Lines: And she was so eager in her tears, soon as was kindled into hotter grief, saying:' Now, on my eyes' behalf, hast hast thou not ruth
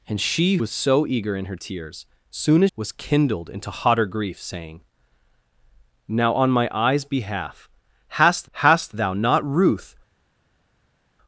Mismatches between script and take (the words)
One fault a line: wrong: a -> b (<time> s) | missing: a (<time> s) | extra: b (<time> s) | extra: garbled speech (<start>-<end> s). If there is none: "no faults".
no faults